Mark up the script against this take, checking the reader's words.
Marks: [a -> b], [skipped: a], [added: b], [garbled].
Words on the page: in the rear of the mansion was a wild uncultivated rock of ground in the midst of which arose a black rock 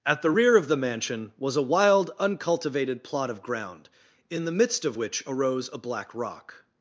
[in -> at] the rear of the mansion was a wild uncultivated [rock -> plot] of ground in the midst of which arose a black rock